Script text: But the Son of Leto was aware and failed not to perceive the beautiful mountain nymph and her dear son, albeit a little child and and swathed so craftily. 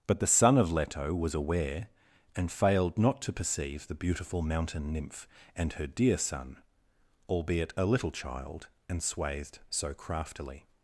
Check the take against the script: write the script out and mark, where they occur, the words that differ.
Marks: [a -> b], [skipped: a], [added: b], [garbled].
But the Son of Leto was aware and failed not to perceive the beautiful mountain nymph and her dear son, albeit a little child and [skipped: and] swathed so craftily.